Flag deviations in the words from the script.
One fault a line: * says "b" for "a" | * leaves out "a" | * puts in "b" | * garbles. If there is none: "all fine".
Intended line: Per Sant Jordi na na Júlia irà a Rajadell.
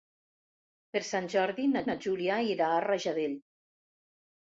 all fine